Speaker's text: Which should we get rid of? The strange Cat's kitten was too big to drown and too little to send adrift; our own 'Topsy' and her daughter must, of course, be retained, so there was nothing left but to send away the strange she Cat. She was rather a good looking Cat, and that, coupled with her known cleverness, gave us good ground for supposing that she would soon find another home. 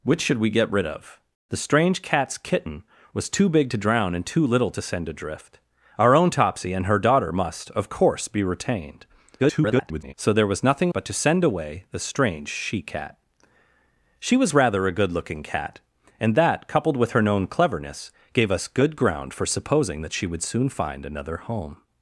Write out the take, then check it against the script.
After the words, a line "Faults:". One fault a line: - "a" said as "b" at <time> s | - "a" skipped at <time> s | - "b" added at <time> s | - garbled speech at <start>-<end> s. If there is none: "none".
Which should we get rid of? The strange Cat's kitten was too big to drown and too little to send adrift; our own 'Topsy' and her daughter must, of course, be retained, [garbled] so there was nothing but to send away the strange she Cat. She was rather a good looking Cat, and that, coupled with her known cleverness, gave us good ground for supposing that she would soon find another home.
Faults:
- garbled speech at 9.4-10.1 s
- "left" skipped at 10.9 s